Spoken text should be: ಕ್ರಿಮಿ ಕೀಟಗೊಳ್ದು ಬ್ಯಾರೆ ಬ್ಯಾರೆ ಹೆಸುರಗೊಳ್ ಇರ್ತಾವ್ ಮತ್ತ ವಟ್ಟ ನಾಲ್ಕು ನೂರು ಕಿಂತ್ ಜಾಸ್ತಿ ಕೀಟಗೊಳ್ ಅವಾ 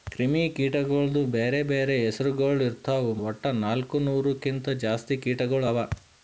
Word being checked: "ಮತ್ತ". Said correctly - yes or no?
no